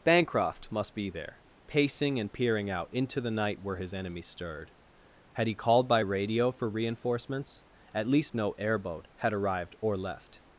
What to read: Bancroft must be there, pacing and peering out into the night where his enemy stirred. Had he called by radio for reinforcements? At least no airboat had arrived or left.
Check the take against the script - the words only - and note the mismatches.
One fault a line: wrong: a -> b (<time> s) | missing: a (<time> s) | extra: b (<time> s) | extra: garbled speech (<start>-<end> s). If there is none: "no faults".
no faults